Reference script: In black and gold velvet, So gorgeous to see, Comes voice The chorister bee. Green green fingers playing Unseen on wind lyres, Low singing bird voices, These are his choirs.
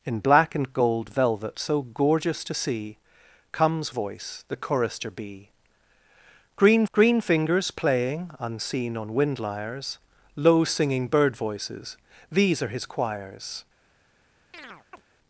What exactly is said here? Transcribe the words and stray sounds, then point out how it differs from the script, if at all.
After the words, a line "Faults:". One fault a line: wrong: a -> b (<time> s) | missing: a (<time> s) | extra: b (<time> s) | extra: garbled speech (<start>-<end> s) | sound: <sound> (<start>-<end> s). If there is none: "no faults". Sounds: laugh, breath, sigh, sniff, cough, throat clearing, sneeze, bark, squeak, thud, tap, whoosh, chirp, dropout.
In black and gold velvet, So gorgeous to see, Comes voice The chorister bee. Green green fingers playing Unseen on wind lyres, Low singing bird voices, These are his choirs.
Faults:
sound: chirp (14.5-15.0 s)